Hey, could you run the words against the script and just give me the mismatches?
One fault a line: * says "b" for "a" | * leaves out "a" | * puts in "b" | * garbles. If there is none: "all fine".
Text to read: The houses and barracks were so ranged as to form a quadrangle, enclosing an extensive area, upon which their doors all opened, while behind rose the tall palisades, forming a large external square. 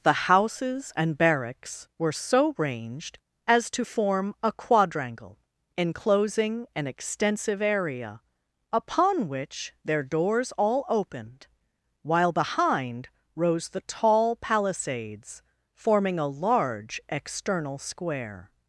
all fine